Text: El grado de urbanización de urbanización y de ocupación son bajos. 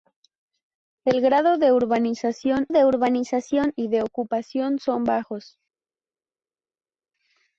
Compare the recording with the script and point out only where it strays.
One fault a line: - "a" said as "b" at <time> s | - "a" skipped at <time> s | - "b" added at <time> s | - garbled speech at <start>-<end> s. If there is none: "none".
none